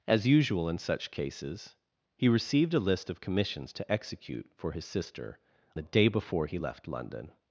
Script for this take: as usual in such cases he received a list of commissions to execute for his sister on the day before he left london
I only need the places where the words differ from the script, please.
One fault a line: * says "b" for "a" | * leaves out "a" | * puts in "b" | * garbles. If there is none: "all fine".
* leaves out "on"